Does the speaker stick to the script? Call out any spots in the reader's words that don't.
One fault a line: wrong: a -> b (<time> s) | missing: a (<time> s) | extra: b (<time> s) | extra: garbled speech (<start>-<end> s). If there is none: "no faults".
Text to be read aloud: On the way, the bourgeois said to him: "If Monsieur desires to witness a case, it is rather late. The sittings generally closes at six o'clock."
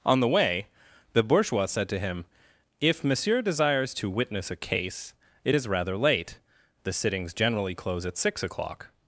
wrong: closes -> close (7.7 s)